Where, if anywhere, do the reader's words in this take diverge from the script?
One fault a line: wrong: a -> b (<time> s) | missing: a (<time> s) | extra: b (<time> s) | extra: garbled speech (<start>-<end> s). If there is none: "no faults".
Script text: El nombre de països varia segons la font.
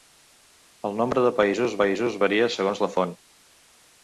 extra: països (1.8 s)